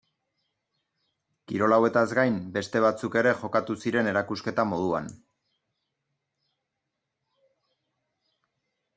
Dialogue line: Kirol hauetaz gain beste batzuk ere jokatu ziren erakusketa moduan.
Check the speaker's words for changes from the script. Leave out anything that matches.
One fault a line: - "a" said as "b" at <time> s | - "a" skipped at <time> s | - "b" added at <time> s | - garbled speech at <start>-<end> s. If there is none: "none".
none